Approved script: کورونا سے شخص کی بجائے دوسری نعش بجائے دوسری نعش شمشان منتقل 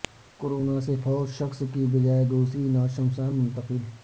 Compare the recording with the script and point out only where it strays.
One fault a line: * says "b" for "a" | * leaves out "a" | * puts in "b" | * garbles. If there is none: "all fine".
* puts in "فوت"
* leaves out "بجائے دوسری نعش"